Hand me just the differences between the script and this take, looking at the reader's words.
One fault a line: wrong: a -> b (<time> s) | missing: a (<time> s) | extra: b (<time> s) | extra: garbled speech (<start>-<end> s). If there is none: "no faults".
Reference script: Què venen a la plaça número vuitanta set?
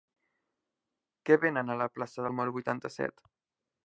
no faults